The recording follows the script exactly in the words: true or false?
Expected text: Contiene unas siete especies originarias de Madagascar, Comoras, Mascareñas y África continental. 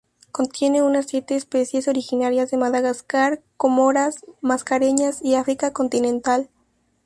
true